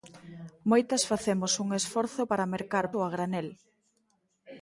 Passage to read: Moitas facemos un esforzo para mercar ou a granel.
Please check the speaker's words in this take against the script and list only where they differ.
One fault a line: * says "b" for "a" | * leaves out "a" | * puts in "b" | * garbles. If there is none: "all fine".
all fine